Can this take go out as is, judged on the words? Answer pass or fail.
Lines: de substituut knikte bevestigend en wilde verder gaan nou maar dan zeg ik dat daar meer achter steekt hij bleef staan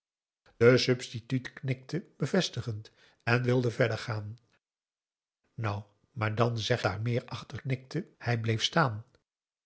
fail